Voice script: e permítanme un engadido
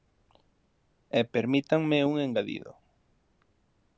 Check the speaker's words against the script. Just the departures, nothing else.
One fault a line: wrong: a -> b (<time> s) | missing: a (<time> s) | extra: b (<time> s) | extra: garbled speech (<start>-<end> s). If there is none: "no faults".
no faults